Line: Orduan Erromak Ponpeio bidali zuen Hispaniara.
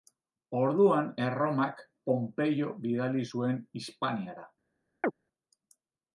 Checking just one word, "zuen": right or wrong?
right